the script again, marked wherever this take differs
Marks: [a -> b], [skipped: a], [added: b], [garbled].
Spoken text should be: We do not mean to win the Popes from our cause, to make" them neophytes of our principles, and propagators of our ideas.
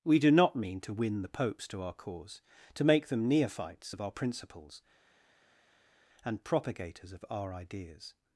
We do not mean to win the Popes [from -> to] our cause, to make" them neophytes of our principles, and propagators of our ideas.